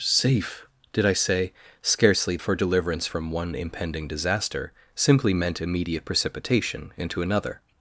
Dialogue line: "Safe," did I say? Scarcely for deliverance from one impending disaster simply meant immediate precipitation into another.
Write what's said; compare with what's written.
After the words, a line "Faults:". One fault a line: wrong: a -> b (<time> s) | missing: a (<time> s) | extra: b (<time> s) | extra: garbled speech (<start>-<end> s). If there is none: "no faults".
"Safe," did I say? Scarcely for deliverance from one impending disaster simply meant immediate precipitation into another.
Faults:
no faults